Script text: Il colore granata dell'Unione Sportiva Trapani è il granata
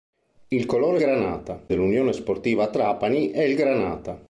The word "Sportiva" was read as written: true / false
true